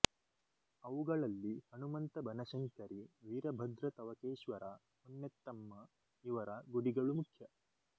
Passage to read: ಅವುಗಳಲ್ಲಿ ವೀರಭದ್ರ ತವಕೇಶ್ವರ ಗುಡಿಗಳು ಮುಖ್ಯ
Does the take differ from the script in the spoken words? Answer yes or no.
yes